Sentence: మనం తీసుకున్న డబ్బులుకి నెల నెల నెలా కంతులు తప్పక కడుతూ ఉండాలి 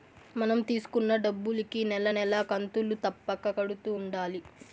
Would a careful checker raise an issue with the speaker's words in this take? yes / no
yes